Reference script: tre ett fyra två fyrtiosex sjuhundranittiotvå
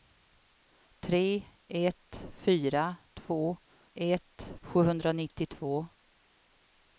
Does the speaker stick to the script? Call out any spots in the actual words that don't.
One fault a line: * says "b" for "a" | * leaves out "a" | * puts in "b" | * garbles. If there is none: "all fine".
* says "ett" for "fyrtiosex"